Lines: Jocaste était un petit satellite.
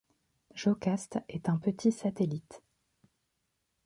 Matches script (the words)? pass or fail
fail